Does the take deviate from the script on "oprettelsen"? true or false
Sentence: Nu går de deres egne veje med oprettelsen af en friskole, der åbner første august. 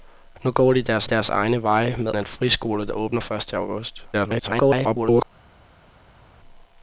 true